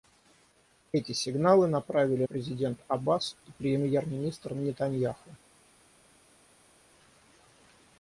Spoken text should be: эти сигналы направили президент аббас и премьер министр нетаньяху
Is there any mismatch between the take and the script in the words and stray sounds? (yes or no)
no